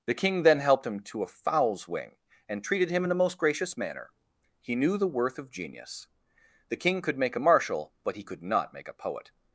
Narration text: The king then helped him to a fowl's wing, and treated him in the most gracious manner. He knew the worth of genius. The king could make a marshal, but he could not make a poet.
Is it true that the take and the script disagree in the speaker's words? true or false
false